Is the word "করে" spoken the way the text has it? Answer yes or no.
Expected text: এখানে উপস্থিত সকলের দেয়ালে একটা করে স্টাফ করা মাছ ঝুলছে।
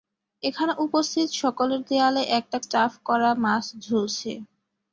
no